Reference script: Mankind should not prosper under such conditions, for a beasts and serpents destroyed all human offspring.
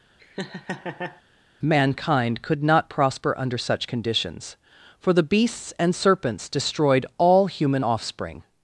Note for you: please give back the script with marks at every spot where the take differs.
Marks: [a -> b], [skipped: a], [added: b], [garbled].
Mankind [should -> could] not prosper under such conditions, for [a -> the] beasts and serpents destroyed all human offspring.